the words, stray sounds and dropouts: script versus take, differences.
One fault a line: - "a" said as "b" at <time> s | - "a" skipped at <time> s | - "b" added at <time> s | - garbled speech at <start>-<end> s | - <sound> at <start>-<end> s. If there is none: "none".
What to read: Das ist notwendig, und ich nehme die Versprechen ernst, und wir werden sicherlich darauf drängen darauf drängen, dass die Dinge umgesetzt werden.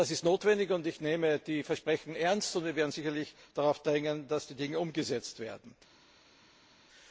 - "darauf drängen" skipped at 4.3 s